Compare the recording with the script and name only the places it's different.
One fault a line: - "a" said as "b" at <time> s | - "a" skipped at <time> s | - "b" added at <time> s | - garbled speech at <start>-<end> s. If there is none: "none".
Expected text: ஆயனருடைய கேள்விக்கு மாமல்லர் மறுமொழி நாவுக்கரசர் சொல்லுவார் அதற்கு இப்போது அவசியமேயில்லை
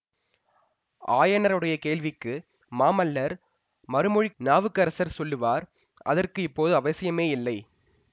none